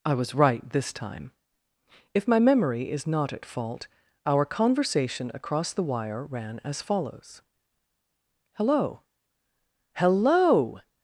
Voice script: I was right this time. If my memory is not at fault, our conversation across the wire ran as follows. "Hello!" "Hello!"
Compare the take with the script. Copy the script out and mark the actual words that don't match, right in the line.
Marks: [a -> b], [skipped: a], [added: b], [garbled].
I was right this time. If my memory is not at fault, our conversation across the wire ran as follows. "Hello!" "Hello!"